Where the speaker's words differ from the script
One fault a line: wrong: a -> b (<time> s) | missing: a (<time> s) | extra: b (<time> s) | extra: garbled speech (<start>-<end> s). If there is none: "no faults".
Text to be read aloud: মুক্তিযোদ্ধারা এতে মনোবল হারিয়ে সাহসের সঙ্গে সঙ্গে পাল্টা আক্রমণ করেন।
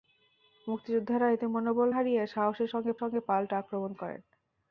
no faults